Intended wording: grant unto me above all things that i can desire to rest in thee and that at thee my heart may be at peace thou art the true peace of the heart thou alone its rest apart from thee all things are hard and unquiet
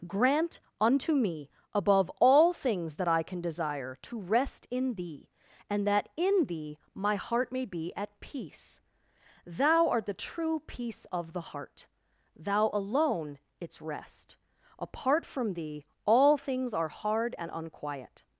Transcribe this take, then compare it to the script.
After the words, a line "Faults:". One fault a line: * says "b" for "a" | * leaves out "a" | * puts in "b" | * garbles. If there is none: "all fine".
grant unto me above all things that i can desire to rest in thee and that in thee my heart may be at peace thou art the true peace of the heart thou alone its rest apart from thee all things are hard and unquiet
Faults:
* says "in" for "at"